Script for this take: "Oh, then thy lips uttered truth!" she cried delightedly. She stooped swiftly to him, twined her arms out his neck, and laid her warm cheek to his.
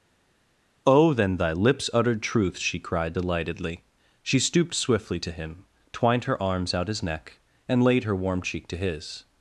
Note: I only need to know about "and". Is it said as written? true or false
true